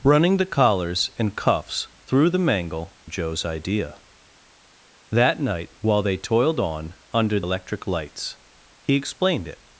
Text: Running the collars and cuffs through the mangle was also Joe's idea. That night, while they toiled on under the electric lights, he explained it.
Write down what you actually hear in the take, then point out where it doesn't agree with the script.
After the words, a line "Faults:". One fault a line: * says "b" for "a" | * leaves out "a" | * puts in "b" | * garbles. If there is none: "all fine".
Running the collars and cuffs through the mangle Joe's idea. That night, while they toiled on under electric lights, he explained it.
Faults:
* leaves out "was also"
* leaves out "the"